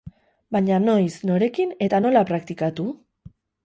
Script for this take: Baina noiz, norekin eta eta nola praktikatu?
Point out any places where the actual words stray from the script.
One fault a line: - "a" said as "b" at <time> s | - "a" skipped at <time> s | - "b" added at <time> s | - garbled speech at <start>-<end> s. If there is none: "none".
- "eta" skipped at 2.0 s